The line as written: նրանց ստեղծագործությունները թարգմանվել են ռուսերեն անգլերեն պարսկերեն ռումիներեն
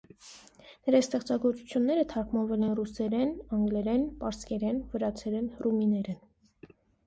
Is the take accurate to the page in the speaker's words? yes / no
no